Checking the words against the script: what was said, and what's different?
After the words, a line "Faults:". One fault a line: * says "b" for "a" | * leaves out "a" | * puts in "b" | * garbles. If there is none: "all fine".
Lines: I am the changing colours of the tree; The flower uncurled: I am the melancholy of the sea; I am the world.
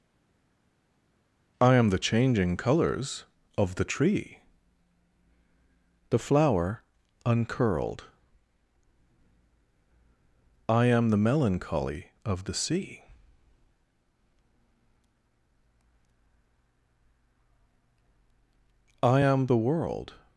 I am the changing colours of the tree; The flower uncurled: I am the melancholy of the sea; I am the world.
Faults:
all fine